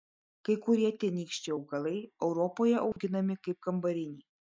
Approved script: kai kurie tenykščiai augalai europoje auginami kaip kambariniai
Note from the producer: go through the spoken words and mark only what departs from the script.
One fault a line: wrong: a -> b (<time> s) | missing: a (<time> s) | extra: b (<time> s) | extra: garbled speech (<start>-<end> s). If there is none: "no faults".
no faults